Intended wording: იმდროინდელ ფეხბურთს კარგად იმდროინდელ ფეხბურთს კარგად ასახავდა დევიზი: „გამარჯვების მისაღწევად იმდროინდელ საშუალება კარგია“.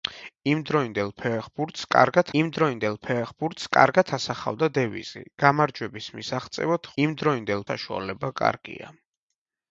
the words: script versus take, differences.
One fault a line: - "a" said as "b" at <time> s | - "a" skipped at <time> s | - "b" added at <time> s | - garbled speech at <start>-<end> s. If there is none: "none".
none